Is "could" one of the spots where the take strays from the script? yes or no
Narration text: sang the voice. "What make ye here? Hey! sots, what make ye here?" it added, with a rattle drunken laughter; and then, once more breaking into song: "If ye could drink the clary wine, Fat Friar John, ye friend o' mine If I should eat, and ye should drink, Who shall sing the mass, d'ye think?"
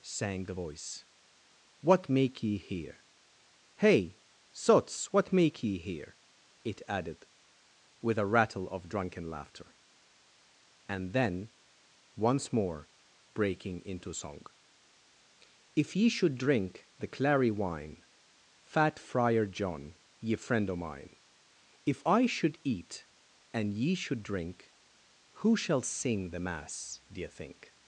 yes